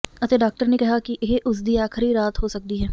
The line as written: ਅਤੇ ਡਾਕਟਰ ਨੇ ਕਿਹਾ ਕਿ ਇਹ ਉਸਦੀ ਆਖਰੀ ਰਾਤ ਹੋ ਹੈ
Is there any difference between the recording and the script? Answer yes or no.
yes